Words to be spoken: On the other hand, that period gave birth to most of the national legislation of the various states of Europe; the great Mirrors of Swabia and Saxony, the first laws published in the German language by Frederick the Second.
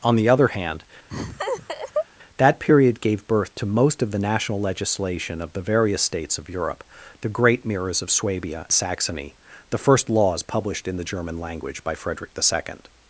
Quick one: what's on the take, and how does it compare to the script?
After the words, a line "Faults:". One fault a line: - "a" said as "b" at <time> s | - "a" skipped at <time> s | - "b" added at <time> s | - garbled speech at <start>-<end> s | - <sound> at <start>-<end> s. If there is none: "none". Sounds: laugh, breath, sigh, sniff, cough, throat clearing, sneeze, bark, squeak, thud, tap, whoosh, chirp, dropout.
On the other hand, that period gave birth to most of the national legislation of the various states of Europe; the great Mirrors of Swabia Saxony, the first laws published in the German language by Frederick the Second.
Faults:
- laugh at 1.1-2.1 s
- "and" skipped at 8.7 s